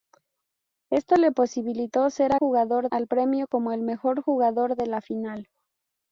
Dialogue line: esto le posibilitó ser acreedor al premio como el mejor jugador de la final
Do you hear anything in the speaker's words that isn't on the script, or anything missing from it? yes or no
yes